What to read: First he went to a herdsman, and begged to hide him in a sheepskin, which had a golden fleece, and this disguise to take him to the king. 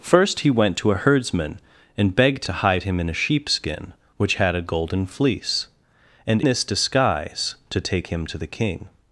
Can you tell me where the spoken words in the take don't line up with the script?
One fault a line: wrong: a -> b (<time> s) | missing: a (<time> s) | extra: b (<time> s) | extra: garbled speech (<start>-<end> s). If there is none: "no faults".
no faults